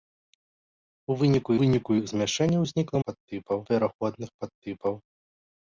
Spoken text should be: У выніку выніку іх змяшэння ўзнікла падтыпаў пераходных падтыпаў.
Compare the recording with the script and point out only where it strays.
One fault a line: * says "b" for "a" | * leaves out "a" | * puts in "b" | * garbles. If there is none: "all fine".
all fine